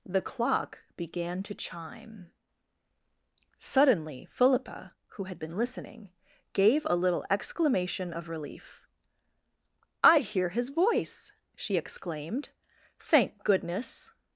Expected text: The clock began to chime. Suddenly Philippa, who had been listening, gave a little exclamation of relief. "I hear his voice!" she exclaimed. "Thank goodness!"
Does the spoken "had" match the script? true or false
true